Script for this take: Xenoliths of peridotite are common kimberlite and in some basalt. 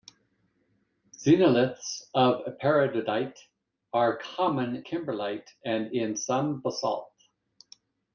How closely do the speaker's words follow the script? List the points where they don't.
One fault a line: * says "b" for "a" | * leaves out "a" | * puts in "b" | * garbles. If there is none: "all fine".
all fine